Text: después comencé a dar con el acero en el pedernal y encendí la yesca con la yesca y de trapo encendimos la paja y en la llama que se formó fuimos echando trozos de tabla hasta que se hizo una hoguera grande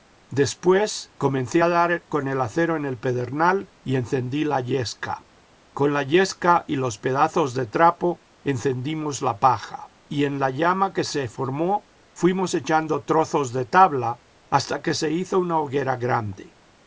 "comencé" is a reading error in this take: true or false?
false